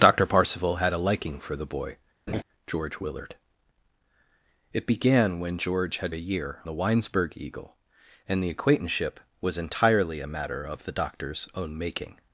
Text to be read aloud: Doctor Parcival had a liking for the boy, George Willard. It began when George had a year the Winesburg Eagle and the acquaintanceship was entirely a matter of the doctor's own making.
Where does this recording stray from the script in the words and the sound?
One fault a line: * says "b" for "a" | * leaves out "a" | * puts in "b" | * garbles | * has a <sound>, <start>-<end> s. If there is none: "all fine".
* has a laugh, 2.3-2.4 s